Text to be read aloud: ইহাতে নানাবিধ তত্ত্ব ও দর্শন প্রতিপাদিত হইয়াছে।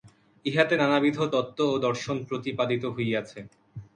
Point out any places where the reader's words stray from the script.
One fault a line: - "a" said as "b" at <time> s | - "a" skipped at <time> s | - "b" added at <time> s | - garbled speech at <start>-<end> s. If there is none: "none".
none